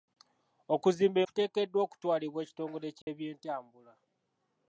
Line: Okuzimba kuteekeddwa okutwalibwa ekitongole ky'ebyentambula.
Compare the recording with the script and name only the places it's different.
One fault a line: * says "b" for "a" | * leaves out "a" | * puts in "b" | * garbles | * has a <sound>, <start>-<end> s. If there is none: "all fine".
* has a dropout, 3.0-3.1 s